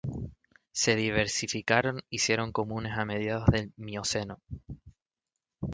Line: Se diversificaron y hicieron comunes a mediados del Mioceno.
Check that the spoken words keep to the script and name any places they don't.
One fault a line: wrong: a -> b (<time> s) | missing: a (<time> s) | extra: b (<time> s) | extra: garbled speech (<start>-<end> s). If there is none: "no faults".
no faults